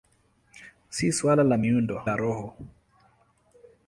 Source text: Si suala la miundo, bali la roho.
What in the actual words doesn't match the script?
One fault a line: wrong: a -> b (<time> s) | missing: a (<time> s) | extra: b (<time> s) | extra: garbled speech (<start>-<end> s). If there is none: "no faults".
missing: bali (2.0 s)